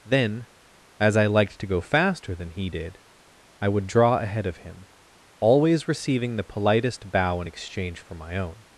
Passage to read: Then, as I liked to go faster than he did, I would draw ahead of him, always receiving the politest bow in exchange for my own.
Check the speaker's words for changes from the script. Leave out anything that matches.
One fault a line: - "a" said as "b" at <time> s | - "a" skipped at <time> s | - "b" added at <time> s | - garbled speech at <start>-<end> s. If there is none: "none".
none